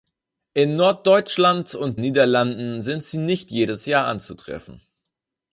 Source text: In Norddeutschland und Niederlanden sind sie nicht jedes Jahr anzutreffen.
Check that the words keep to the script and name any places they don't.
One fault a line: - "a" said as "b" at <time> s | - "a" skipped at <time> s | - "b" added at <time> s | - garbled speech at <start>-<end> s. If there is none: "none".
none